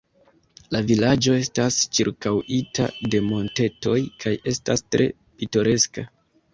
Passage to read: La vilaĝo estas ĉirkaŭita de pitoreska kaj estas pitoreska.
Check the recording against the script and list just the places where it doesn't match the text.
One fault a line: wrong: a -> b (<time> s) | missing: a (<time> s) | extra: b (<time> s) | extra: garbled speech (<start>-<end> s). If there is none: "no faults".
wrong: pitoreska -> montetoj (3.3 s)
extra: tre (4.9 s)